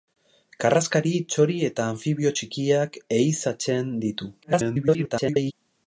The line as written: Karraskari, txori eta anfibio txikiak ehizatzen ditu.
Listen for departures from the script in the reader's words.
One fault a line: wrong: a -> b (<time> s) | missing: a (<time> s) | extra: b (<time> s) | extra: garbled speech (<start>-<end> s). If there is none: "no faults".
extra: garbled speech (4.4-5.5 s)